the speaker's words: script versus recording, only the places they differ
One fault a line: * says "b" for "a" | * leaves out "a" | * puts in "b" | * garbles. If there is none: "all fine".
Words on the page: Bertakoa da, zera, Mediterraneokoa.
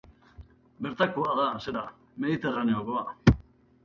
all fine